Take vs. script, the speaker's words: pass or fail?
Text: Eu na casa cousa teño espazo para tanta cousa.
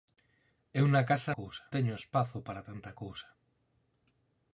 pass